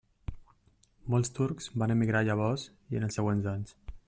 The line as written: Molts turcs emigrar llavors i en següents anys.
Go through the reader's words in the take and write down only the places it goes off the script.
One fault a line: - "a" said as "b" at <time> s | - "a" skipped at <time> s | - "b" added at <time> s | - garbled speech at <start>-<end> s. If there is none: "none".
- "van" added at 1.8 s
- "els" added at 3.1 s